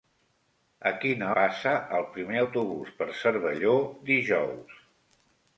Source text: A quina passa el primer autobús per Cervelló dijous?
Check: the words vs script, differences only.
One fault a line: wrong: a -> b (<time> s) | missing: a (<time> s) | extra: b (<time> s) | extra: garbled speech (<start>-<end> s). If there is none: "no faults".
no faults